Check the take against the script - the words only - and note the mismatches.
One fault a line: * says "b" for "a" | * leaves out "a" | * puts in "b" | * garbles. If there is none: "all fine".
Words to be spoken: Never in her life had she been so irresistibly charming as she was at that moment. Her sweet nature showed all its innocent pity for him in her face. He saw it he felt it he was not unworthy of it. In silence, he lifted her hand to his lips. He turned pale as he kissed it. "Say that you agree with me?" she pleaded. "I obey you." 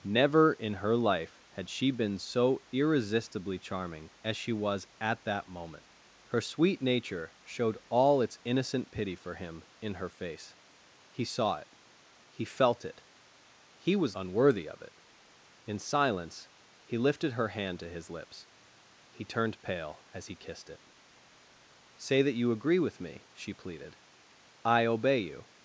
* leaves out "not"